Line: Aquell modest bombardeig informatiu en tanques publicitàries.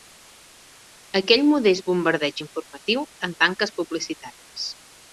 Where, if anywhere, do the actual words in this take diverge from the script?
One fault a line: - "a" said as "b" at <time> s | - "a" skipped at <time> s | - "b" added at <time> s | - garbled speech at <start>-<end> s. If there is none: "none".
none